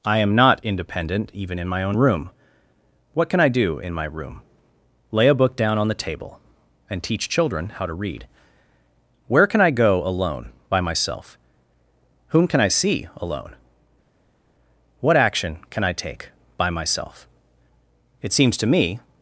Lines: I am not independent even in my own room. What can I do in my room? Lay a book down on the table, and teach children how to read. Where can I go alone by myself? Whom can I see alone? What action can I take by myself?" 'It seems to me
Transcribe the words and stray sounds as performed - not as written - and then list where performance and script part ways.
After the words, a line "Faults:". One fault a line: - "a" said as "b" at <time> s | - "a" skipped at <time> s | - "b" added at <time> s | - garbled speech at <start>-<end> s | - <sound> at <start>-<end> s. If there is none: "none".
I am not independent even in my own room. What can I do in my room? Lay a book down on the table, and teach children how to read. Where can I go alone by myself? Whom can I see alone? What action can I take by myself?" 'It seems to me
Faults:
none